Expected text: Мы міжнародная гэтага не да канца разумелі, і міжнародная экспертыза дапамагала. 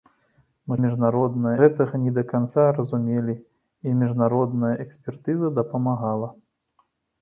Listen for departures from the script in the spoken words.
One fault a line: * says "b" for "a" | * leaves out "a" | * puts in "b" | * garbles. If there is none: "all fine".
all fine